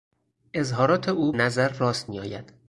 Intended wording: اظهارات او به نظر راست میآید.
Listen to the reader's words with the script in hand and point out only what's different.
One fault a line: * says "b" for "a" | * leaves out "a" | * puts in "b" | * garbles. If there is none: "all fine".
* leaves out "به"